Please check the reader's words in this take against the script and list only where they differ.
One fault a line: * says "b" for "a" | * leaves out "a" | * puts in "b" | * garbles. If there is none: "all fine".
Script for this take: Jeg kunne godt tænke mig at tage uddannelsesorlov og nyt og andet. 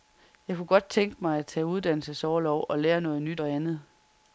* puts in "lære noget"